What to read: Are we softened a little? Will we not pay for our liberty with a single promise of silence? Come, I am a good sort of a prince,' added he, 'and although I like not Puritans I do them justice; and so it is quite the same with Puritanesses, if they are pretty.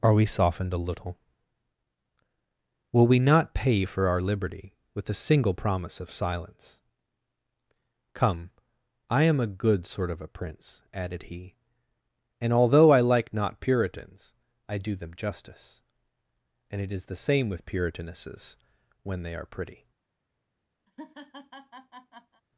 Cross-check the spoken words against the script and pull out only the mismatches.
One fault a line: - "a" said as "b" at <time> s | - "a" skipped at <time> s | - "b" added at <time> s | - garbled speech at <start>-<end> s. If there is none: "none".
- "so" skipped at 16.8 s
- "quite" skipped at 17.1 s
- "if" said as "when" at 19.0 s